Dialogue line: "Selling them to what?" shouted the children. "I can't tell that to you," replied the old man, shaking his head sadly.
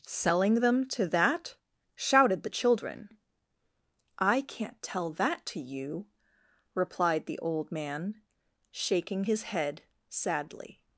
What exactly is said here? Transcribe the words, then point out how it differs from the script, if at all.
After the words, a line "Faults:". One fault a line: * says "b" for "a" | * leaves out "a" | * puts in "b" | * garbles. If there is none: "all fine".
"Selling them to that?" shouted the children. "I can't tell that to you," replied the old man, shaking his head sadly.
Faults:
* says "that" for "what"